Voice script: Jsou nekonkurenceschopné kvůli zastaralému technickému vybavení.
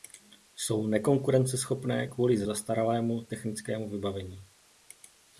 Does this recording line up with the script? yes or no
yes